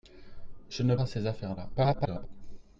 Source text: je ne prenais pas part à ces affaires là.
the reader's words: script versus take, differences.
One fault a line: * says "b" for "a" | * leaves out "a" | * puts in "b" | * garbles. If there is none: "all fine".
* leaves out "prenais pas part"
* garbles